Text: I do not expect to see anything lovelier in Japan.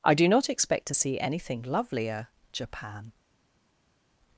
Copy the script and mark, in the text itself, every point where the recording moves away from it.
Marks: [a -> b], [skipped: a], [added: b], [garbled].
I do not expect to see anything lovelier [skipped: in] Japan.